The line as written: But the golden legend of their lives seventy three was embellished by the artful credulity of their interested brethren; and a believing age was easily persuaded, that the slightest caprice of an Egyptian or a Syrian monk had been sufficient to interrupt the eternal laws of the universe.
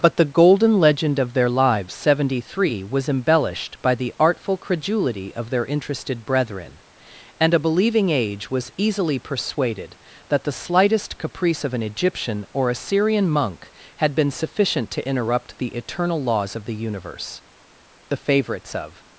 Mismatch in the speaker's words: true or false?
true